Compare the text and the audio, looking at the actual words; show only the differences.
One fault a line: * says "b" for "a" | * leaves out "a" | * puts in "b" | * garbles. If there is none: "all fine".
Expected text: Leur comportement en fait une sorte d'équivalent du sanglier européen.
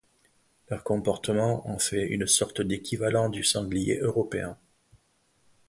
all fine